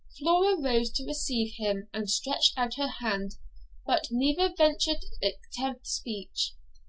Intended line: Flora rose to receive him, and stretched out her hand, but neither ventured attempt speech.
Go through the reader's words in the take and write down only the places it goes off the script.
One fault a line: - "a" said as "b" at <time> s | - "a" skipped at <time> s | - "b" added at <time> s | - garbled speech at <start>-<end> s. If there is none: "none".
none